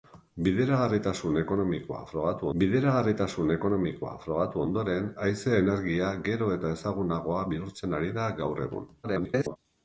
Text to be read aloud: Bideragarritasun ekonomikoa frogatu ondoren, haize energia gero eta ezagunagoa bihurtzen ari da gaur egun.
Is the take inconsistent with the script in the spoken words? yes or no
yes